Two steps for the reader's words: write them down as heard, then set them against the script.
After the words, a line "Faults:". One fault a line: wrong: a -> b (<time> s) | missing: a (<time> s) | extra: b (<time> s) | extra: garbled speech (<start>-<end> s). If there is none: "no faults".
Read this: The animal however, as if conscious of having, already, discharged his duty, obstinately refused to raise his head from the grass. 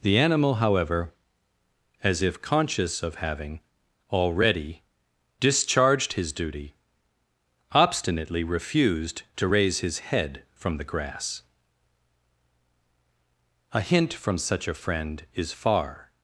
The animal however, as if conscious of having, already, discharged his duty, obstinately refused to raise his head from the grass. "A hint from such a friend is far
Faults:
extra: A hint from such a friend is far (13.7 s)